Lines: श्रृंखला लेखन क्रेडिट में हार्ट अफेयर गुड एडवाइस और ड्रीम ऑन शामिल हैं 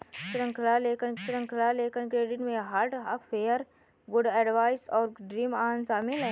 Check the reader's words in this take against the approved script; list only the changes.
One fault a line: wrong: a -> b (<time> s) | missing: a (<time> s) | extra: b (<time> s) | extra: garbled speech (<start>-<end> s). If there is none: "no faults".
extra: श्रृंखला लेखन (1.2 s)